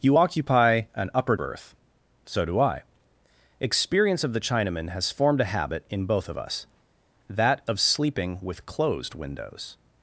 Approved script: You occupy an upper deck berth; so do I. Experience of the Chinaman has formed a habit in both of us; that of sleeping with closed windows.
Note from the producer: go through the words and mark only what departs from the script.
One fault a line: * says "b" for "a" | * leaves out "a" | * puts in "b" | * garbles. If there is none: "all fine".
* leaves out "deck"